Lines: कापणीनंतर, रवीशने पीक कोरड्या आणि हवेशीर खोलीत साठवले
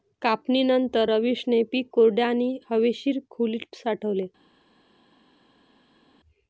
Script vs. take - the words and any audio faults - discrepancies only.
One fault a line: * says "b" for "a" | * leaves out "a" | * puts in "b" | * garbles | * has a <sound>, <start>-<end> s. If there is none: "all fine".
all fine